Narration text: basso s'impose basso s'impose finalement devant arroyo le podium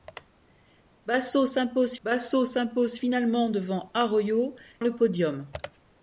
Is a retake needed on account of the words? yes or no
no